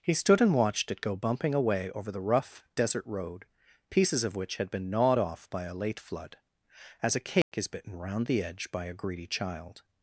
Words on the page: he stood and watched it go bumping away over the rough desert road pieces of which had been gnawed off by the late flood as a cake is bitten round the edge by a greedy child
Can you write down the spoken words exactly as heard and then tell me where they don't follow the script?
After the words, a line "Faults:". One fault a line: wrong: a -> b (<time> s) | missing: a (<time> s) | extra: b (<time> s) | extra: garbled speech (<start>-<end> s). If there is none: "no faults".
he stood and watched it go bumping away over the rough desert road pieces of which had been gnawed off by a late flood as a cake is bitten round the edge by a greedy child
Faults:
wrong: the -> a (5.6 s)